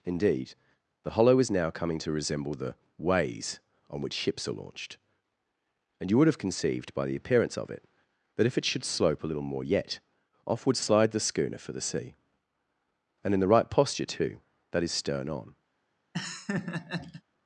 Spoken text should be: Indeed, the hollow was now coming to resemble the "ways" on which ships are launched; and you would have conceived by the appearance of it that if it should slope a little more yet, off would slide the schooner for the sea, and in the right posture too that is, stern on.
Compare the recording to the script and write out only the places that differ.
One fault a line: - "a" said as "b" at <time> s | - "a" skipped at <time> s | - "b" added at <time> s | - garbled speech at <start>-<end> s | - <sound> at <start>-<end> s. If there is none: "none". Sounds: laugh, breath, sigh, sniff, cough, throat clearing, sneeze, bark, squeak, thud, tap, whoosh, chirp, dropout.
- "was" said as "is" at 1.4 s
- laugh at 16.1-17.2 s